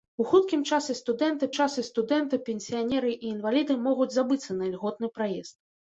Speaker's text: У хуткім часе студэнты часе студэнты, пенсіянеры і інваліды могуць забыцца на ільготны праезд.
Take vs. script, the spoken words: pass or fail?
pass